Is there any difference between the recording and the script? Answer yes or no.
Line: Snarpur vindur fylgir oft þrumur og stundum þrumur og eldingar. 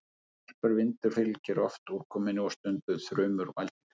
yes